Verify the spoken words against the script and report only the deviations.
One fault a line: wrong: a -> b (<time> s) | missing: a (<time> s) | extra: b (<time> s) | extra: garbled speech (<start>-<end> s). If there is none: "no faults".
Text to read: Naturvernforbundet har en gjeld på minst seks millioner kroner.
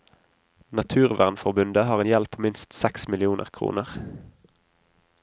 no faults